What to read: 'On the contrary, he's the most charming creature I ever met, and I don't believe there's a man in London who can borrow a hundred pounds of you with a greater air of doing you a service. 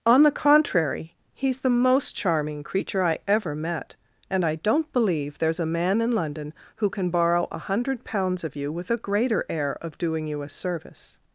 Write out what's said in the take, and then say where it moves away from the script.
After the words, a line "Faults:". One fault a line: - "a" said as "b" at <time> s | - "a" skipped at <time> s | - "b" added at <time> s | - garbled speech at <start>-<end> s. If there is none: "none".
'On the contrary, he's the most charming creature I ever met, and I don't believe there's a man in London who can borrow a hundred pounds of you with a greater air of doing you a service.
Faults:
none